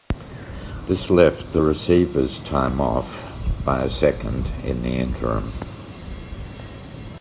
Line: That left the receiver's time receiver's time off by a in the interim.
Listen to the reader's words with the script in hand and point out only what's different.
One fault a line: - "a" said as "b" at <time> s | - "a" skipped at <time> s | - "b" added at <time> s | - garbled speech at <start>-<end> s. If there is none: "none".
- "That" said as "This" at 0.9 s
- "receiver's time" skipped at 2.8 s
- "second" added at 3.9 s